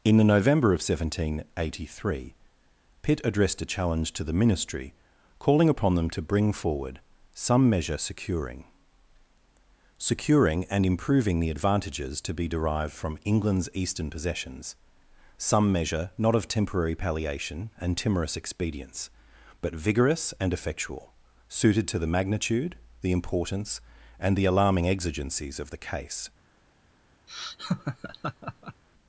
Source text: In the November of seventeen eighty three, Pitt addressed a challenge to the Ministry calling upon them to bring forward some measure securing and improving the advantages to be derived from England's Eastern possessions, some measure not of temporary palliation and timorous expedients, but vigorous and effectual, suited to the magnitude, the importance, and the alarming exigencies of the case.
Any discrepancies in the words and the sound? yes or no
yes